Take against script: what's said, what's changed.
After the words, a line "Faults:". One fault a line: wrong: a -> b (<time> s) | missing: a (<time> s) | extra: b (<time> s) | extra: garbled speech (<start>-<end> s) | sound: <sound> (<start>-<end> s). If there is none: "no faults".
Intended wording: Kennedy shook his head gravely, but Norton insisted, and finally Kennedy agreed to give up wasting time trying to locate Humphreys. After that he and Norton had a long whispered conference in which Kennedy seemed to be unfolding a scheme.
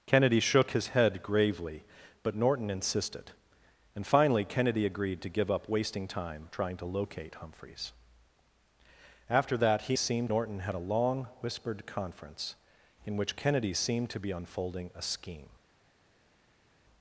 Kennedy shook his head gravely, but Norton insisted, and finally Kennedy agreed to give up wasting time trying to locate Humphreys. After that he seemed Norton had a long whispered conference in which Kennedy seemed to be unfolding a scheme.
Faults:
wrong: and -> seemed (9.9 s)